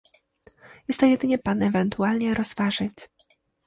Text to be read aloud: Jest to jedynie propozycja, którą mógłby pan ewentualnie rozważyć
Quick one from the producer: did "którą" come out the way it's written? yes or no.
no